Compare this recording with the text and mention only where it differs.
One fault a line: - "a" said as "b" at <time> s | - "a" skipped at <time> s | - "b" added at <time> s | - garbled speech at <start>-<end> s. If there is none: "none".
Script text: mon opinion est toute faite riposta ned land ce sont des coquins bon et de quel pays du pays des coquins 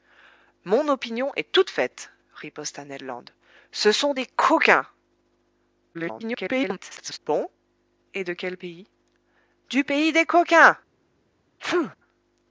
- garbled speech at 5.9-7.2 s